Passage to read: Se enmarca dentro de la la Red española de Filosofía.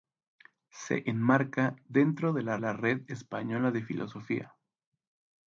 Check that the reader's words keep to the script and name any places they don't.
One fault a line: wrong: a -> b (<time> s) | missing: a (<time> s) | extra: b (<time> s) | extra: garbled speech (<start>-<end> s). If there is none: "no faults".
no faults